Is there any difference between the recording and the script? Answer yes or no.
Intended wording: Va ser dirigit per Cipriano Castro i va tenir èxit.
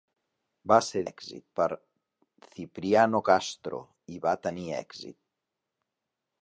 yes